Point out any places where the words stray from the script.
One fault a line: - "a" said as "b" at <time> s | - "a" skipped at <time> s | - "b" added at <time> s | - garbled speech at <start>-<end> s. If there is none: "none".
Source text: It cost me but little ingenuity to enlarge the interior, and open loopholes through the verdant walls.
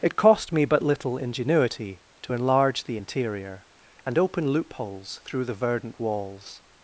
none